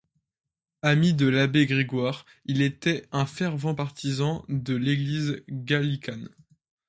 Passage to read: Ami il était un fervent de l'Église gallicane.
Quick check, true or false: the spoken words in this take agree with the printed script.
false